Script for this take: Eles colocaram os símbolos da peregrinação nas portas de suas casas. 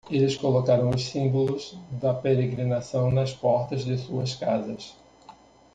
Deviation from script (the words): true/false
false